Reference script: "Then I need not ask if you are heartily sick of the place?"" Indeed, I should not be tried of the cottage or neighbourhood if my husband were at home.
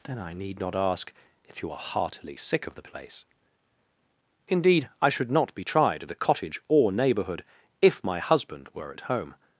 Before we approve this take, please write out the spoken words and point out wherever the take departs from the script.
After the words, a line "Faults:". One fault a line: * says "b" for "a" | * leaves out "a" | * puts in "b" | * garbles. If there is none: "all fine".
"Then I need not ask if you are heartily sick of the place?"" Indeed, I should not be tried of the cottage or neighbourhood if my husband were at home.
Faults:
all fine